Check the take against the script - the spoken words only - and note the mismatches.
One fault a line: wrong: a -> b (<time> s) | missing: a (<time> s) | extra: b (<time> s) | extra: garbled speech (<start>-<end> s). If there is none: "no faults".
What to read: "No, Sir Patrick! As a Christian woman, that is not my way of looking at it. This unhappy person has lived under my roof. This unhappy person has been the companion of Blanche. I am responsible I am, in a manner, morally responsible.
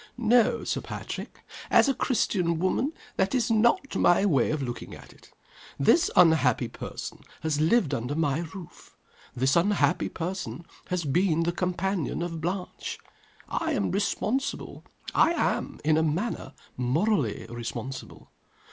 no faults